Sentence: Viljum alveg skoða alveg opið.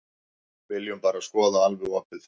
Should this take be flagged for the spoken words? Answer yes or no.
yes